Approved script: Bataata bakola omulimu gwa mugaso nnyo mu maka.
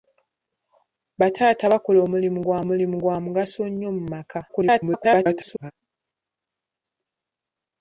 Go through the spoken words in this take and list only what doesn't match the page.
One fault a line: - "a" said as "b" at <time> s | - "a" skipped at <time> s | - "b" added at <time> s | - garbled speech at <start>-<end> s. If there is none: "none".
- "omulimu gwa" added at 2.6 s
- garbled speech at 4.5-5.7 s